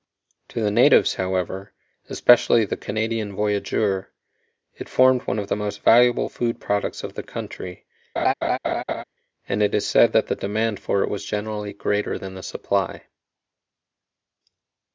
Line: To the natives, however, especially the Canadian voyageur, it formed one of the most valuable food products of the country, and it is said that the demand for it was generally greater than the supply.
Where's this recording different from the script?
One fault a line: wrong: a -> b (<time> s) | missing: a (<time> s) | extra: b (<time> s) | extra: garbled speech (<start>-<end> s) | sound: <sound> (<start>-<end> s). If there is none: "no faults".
sound: laugh (8.2-9.0 s)